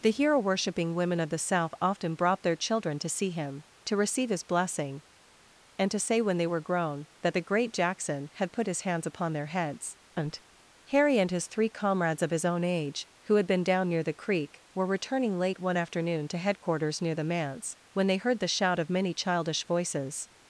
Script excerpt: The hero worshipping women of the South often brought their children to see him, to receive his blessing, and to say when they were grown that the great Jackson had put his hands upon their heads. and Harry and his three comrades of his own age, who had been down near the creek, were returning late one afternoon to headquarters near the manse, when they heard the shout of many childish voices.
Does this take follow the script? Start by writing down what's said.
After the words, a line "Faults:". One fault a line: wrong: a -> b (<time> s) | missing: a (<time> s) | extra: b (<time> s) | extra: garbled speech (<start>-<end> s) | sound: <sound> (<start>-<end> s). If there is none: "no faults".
The hero worshipping women of the South often brought their children to see him, to receive his blessing, and to say when they were grown that the great Jackson had put his hands upon their heads. and Harry and his three comrades of his own age, who had been down near the creek, were returning late one afternoon to headquarters near the manse, when they heard the shout of many childish voices.
Faults:
no faults